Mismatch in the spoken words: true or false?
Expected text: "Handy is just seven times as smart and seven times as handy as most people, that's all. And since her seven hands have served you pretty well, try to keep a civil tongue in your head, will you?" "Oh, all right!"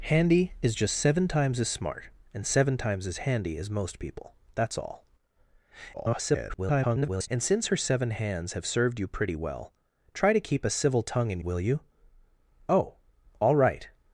true